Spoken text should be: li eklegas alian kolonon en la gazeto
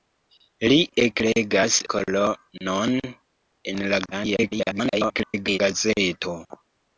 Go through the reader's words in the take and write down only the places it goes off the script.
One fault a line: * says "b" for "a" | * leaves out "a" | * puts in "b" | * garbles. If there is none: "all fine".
* leaves out "alian"
* garbles